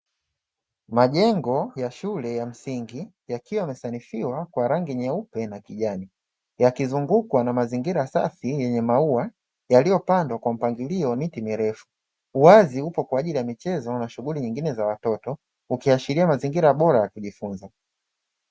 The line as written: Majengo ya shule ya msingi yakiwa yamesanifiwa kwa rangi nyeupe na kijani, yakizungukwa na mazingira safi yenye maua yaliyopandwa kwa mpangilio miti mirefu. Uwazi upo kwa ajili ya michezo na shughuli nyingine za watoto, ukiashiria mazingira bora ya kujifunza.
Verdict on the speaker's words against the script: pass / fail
pass